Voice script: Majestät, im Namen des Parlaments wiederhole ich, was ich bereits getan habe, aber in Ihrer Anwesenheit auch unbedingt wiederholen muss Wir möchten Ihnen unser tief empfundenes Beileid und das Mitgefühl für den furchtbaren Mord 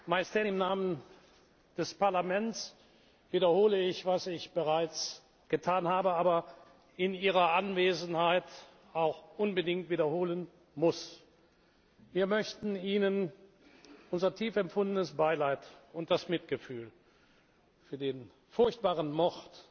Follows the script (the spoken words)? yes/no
yes